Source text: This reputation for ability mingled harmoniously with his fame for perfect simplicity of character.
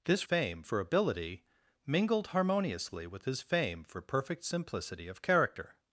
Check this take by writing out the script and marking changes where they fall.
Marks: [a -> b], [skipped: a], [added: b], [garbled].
This [reputation -> fame] for ability mingled harmoniously with his fame for perfect simplicity of character.